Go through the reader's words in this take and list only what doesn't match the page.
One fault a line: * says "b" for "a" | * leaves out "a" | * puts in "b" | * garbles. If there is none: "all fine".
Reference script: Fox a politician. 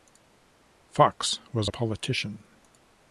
* puts in "was"